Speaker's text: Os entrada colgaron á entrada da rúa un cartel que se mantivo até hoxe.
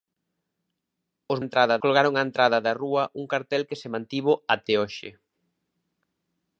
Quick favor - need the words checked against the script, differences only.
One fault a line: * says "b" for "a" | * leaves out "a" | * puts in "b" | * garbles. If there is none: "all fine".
all fine